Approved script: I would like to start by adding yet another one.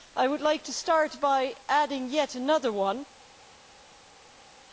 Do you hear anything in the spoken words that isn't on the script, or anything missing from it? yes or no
no